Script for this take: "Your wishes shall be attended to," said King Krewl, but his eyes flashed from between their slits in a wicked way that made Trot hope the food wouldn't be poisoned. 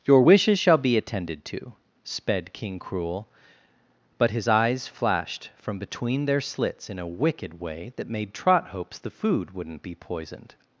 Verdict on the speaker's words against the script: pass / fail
fail